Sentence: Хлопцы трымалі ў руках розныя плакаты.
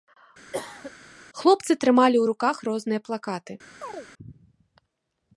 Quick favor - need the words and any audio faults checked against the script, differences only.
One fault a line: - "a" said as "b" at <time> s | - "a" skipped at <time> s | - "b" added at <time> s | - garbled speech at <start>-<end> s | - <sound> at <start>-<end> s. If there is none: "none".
- cough at 0.5-0.9 s
- chirp at 3.8-4.1 s